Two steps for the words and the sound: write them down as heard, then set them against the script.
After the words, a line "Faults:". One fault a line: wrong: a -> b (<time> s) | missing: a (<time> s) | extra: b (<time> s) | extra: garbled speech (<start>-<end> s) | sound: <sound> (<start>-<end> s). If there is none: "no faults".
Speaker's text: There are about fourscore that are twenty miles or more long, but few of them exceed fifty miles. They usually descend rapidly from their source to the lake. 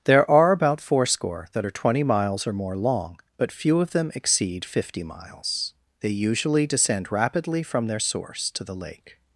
There are about fourscore that are twenty miles or more long, but few of them exceed fifty miles. They usually descend rapidly from their source to the lake.
Faults:
no faults